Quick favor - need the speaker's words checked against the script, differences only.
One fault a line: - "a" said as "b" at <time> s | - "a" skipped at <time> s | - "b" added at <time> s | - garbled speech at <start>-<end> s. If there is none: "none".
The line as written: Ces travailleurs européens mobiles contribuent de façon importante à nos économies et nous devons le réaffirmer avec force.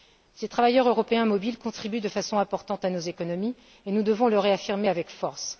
none